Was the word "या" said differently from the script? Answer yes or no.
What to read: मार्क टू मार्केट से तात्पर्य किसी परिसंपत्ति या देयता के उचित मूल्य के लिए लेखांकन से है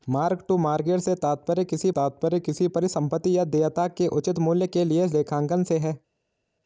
no